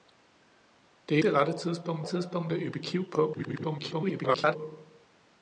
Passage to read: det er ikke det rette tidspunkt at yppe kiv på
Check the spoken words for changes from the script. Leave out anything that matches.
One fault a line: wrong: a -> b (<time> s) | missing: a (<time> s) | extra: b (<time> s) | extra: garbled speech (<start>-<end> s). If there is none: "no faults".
missing: ikke (1.2 s)
extra: tidspunkt (2.0 s)
extra: garbled speech (3.3-4.6 s)